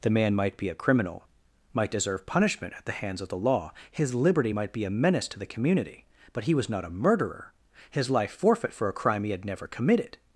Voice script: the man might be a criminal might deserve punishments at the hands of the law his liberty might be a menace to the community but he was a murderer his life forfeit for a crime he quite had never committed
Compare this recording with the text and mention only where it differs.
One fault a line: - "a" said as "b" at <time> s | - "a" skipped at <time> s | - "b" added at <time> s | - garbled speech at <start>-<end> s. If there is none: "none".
- "punishments" said as "punishment" at 2.2 s
- "not" added at 6.7 s
- "quite" skipped at 9.3 s